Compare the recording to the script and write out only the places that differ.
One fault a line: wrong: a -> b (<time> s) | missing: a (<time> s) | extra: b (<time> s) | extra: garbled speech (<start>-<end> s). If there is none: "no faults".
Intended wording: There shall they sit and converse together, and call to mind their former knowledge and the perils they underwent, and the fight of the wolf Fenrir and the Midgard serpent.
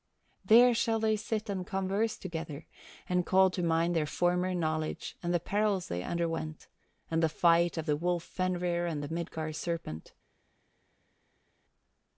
no faults